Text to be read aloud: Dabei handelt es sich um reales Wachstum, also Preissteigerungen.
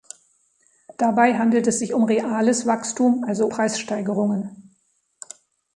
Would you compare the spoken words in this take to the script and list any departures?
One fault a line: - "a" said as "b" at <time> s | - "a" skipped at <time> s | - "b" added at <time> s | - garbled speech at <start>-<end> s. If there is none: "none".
none